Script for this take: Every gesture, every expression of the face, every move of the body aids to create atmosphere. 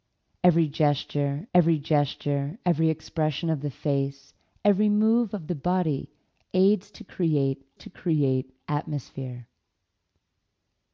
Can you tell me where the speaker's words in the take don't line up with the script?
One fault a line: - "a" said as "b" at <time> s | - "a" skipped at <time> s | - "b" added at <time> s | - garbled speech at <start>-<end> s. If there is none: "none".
- "gesture every" added at 1.8 s
- "to create" added at 7.8 s